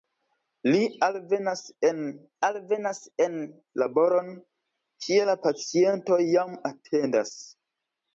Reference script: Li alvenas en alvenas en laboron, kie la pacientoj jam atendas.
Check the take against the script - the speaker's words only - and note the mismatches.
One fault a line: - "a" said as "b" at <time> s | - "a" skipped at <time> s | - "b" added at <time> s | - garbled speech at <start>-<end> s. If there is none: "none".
none